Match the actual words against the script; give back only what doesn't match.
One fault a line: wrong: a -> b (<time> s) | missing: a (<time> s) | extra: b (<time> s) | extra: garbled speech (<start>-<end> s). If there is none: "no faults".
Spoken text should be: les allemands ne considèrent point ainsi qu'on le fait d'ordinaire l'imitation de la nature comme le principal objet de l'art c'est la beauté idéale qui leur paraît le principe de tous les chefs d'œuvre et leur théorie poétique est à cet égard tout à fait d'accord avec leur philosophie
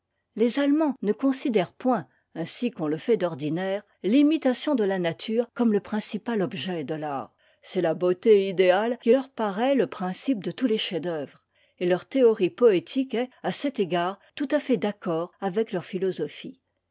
no faults